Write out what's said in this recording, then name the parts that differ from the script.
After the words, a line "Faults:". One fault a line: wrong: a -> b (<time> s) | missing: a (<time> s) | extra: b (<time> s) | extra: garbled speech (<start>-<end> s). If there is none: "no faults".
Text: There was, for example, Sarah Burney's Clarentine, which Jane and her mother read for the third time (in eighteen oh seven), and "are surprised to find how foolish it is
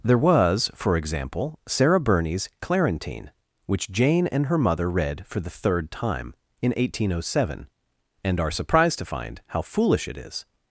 There was, for example, Sarah Burney's Clarentine, which Jane and her mother read for the third time (in eighteen oh seven), and "are surprised to find how foolish it is
Faults:
no faults